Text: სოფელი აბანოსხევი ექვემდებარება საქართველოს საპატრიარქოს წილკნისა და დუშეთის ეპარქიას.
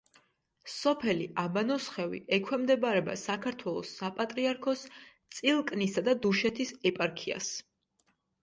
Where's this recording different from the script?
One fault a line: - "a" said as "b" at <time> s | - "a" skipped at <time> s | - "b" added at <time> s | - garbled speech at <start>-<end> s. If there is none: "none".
none